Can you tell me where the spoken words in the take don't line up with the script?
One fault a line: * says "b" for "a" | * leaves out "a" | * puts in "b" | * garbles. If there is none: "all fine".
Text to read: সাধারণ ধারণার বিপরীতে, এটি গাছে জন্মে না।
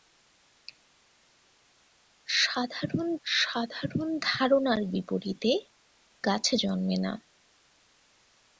* puts in "সাধারণ"
* leaves out "এটি"